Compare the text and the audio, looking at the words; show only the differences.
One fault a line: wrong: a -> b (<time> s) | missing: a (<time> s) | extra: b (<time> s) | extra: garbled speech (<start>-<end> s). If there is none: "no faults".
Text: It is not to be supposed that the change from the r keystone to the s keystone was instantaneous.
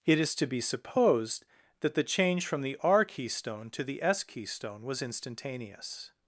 missing: not (0.3 s)